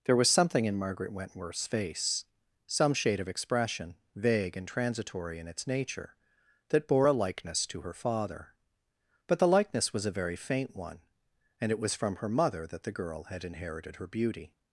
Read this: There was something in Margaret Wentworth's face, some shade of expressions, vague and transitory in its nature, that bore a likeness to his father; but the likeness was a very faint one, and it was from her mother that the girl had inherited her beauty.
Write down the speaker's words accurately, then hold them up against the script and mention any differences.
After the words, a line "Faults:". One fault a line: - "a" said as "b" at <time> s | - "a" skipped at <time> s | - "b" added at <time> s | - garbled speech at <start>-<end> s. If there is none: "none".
There was something in Margaret Wentworth's face, some shade of expression, vague and transitory in its nature, that bore a likeness to her father; but the likeness was a very faint one, and it was from her mother that the girl had inherited her beauty.
Faults:
- "expressions" said as "expression" at 3.3 s
- "his" said as "her" at 7.8 s